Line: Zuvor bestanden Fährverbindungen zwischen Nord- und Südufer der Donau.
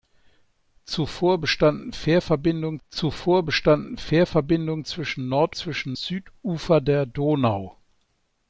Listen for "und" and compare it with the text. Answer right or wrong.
wrong